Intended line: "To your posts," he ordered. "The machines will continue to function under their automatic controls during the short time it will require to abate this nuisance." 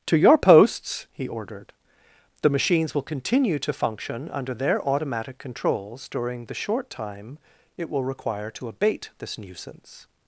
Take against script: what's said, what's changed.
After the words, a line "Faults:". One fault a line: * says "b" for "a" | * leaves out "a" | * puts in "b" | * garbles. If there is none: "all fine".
"To your posts," he ordered. "The machines will continue to function under their automatic controls during the short time it will require to abate this nuisance."
Faults:
all fine